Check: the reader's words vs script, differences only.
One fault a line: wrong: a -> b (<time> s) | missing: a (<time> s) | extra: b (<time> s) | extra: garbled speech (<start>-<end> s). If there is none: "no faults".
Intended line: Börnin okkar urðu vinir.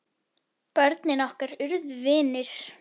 no faults